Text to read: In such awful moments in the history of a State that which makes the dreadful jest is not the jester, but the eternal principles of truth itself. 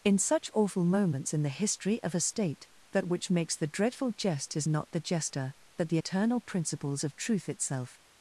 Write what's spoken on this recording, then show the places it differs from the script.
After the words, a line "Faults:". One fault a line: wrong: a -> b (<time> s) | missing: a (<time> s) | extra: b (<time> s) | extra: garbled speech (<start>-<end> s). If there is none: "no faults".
In such awful moments in the history of a State that which makes the dreadful jest is not the jester, but the eternal principles of truth itself.
Faults:
no faults